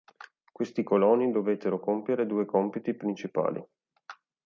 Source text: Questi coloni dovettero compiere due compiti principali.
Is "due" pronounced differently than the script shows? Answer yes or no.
no